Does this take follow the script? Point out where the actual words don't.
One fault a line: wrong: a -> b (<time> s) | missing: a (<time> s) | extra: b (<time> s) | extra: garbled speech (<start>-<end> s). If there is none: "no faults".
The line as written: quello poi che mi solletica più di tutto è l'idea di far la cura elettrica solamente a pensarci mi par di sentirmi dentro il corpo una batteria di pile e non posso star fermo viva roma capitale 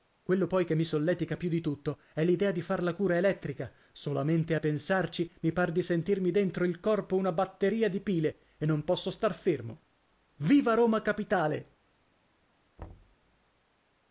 no faults